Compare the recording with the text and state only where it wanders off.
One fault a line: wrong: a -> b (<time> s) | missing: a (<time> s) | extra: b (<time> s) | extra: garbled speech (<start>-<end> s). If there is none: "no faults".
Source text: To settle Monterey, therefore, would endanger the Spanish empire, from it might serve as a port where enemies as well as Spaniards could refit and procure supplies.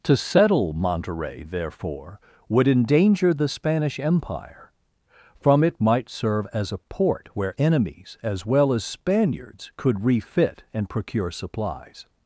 no faults